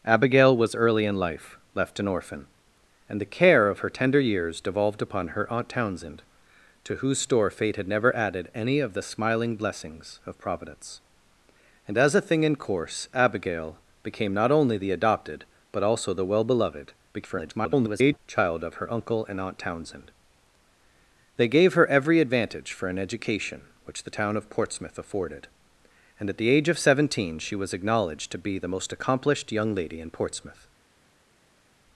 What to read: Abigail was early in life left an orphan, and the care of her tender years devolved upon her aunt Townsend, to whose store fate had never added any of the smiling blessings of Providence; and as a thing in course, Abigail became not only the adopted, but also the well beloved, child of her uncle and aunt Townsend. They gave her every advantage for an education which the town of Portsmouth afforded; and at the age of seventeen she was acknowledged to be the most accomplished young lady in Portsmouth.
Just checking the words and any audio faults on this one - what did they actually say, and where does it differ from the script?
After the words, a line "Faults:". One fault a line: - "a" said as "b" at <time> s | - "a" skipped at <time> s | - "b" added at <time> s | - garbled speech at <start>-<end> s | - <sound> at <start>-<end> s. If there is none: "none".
Abigail was early in life left an orphan, and the care of her tender years devolved upon her aunt Townsend, to whose store fate had never added any of the smiling blessings of Providence; and as a thing in course, Abigail became not only the adopted, but also the well beloved, [garbled] child of her uncle and aunt Townsend. They gave her every advantage for an education which the town of Portsmouth afforded; and at the age of seventeen she was acknowledged to be the most accomplished young lady in Portsmouth.
Faults:
- garbled speech at 17.1-18.2 s